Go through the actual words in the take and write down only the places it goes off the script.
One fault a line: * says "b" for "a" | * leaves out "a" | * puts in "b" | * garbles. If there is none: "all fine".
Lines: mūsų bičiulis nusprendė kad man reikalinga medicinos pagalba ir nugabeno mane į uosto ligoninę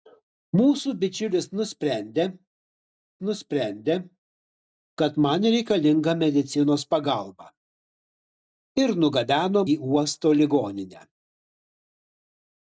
* puts in "nusprendė"
* leaves out "mane"